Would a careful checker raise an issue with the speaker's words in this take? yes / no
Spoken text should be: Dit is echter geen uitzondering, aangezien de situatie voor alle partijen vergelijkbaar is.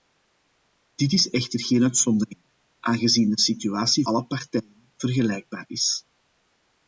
yes